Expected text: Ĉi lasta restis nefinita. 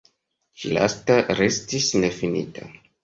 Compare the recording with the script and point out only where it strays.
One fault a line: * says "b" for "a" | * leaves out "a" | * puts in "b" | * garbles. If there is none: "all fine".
all fine